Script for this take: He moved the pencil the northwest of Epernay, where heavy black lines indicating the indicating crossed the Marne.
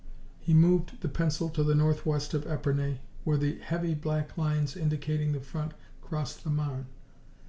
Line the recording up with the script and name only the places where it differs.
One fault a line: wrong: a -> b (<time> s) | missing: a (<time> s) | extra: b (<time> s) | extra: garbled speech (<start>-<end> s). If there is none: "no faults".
extra: to (1.5 s)
extra: the (3.4 s)
wrong: indicating -> front (5.4 s)